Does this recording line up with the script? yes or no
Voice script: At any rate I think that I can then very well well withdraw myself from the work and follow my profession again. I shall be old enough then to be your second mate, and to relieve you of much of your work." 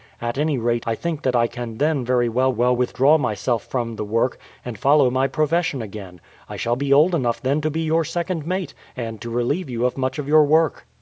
yes